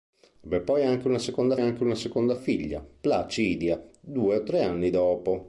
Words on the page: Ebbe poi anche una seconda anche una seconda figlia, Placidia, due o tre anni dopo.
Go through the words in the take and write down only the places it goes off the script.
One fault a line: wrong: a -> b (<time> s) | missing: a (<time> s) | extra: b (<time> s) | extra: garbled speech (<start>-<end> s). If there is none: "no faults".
no faults